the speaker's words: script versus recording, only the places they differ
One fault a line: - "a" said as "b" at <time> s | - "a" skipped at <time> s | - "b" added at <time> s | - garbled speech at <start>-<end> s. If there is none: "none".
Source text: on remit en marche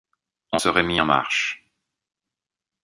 - "se" added at 0.6 s